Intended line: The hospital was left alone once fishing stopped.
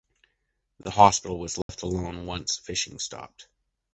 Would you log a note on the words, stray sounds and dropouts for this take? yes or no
yes